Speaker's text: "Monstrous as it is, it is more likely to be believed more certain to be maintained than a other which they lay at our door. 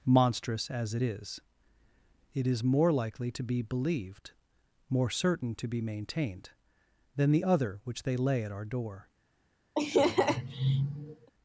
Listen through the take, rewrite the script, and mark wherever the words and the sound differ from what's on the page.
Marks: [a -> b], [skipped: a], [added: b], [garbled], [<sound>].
"Monstrous as it is, it is more likely to be believed more certain to be maintained than [a -> the] other which they lay at our door. [laugh]